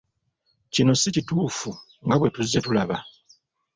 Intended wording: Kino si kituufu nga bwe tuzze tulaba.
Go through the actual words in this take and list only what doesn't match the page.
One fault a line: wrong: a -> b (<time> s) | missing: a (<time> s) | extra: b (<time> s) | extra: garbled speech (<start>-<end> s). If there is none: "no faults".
no faults